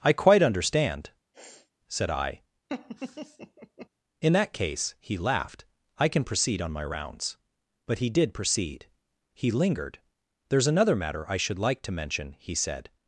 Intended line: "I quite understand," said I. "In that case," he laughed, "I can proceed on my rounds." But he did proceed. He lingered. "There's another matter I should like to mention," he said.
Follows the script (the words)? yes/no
yes